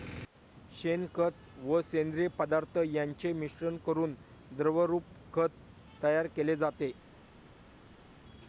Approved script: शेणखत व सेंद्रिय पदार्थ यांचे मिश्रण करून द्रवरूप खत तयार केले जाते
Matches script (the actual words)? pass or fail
pass